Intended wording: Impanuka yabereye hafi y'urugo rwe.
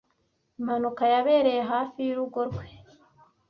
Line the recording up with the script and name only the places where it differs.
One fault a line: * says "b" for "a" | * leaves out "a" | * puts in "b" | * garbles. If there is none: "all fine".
all fine